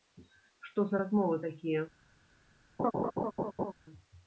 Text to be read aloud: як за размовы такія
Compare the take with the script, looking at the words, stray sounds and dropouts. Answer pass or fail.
fail